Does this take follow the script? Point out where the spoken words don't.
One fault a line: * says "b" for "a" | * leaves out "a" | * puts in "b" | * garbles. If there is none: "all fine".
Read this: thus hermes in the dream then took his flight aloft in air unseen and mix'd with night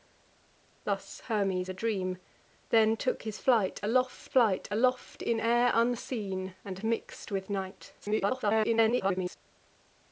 * leaves out "in"
* puts in "flight aloft"
* garbles